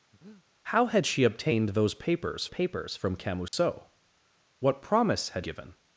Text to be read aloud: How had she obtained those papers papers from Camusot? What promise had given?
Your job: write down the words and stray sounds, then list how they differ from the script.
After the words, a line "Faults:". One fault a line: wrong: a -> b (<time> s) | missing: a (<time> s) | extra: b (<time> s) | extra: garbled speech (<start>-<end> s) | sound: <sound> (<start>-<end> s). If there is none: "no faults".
How had she obtained those papers papers from Camusot? What promise had given?
Faults:
sound: breath (0.1-0.4 s)
sound: dropout (3.5-3.5 s)